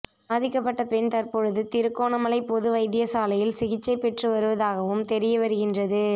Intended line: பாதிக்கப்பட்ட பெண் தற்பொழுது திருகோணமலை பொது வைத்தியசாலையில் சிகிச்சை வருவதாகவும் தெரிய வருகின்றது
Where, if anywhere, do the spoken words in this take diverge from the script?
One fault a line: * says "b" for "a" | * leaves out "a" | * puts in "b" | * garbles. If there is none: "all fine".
* puts in "பெற்று"